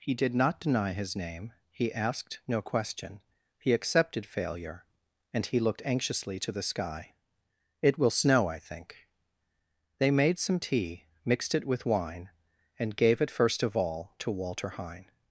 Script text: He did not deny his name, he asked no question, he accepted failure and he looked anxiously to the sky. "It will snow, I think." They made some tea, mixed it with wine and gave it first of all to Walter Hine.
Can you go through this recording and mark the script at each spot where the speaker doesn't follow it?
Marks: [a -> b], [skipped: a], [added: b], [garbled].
He did not deny his name, he asked no question, he accepted failure and he looked anxiously to the sky. "It will snow, I think." They made some tea, mixed it with wine and gave it first of all to Walter Hine.